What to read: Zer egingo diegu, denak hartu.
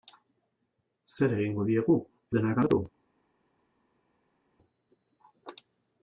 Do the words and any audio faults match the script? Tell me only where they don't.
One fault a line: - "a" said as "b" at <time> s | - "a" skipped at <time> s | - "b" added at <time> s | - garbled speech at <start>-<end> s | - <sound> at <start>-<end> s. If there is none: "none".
none